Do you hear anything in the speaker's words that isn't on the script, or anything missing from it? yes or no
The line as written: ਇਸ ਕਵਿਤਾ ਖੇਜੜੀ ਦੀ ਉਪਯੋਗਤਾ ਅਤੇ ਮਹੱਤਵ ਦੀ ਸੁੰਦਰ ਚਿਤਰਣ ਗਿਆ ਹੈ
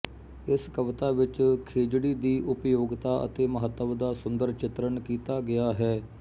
yes